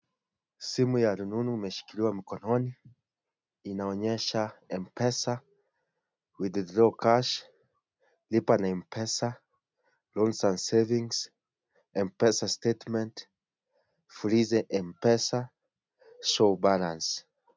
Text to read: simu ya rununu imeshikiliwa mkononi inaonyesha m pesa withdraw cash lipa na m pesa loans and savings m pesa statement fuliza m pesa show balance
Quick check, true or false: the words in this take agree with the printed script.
true